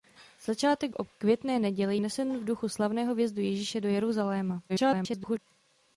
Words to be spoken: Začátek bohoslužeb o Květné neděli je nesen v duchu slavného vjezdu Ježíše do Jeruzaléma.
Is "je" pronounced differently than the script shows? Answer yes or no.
yes